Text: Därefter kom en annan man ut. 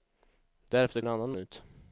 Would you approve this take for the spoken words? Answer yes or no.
no